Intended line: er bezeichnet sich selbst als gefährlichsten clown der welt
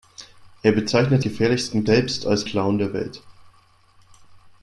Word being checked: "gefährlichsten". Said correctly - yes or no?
no